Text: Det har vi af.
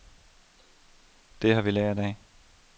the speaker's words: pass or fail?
fail